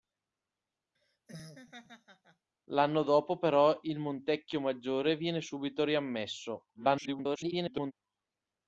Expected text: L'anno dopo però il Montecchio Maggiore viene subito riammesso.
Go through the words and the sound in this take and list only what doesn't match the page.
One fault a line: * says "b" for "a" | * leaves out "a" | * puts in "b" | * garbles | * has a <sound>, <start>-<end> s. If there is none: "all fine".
* has a laugh, 0.9-2.5 s
* garbles